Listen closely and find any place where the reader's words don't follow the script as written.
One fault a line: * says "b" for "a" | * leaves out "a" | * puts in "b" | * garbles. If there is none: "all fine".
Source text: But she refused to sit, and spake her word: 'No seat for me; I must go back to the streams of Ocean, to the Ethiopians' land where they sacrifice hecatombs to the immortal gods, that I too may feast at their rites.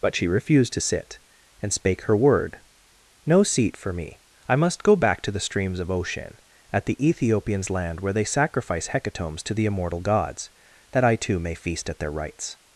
* says "at" for "to"